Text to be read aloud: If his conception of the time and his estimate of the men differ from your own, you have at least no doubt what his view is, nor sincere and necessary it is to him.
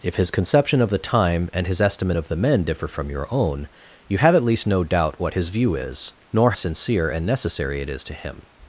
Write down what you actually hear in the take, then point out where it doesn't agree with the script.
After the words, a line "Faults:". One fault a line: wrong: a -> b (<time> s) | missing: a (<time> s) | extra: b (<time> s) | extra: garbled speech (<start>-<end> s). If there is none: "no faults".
If his conception of the time and his estimate of the men differ from your own, you have at least no doubt what his view is, nor sincere and necessary it is to him.
Faults:
no faults